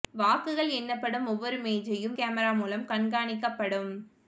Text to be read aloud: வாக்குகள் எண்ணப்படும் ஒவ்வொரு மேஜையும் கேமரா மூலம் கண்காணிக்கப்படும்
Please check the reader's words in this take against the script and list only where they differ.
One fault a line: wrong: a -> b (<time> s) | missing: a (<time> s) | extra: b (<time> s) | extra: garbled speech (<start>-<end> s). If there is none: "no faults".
no faults